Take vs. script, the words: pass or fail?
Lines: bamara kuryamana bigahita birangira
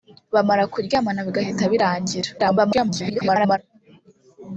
fail